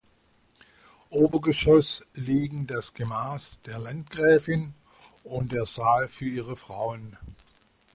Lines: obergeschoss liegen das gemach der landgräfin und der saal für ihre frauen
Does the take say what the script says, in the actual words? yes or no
yes